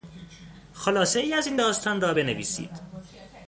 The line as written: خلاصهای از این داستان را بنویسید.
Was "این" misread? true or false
false